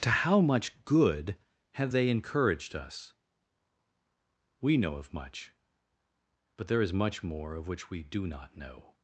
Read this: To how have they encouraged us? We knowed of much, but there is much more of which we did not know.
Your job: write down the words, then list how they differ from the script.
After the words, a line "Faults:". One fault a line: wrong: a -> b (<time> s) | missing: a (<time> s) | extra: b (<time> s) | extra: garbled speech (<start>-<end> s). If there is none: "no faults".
To how much good have they encouraged us? We know of much, but there is much more of which we do not know.
Faults:
extra: much good (0.4 s)
wrong: knowed -> know (4.8 s)
wrong: did -> do (8.0 s)